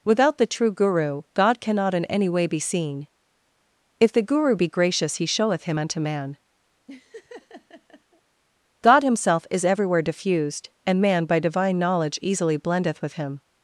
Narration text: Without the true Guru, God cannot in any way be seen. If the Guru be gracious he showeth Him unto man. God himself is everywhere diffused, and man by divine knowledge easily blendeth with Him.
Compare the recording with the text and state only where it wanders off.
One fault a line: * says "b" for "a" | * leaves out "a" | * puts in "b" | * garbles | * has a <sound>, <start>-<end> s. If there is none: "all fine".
* has a laugh, 6.9-8.2 s